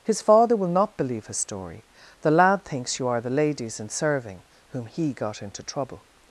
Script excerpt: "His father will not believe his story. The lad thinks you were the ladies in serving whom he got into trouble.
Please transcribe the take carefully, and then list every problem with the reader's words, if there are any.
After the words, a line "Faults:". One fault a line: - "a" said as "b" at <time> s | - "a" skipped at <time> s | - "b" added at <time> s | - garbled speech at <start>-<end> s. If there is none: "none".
"His father will not believe his story. The lad thinks you are the ladies in serving whom he got into trouble.
Faults:
- "were" said as "are" at 3.1 s